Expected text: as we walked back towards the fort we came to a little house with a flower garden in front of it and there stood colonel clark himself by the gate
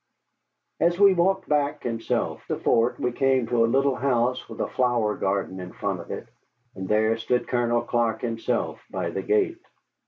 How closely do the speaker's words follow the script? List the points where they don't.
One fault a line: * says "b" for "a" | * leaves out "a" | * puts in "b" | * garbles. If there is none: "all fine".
* says "himself" for "towards"